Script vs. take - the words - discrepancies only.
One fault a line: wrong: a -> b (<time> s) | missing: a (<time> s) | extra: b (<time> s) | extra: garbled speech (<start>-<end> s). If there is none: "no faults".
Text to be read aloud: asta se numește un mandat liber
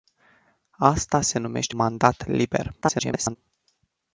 missing: un (1.8 s)
extra: garbled speech (2.8-3.4 s)